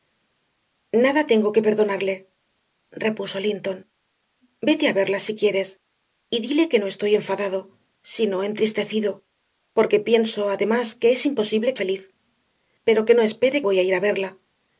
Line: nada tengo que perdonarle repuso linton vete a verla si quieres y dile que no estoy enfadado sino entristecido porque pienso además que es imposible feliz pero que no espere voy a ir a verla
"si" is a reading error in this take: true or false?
false